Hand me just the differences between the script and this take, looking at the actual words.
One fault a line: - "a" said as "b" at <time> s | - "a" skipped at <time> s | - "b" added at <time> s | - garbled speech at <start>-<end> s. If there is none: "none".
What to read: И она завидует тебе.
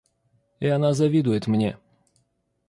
- "тебе" said as "мне" at 1.5 s